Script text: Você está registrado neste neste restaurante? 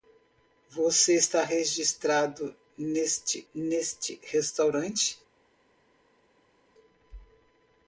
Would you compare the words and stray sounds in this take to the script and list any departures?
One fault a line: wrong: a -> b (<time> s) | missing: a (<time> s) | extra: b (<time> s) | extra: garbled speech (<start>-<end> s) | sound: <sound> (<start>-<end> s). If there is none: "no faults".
no faults